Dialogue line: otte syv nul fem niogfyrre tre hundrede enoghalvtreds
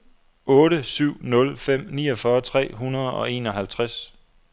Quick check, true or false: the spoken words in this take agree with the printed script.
false